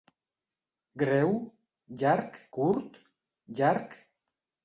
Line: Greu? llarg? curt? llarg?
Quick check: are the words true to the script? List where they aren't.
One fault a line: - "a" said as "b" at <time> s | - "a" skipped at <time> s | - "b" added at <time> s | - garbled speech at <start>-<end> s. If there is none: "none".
none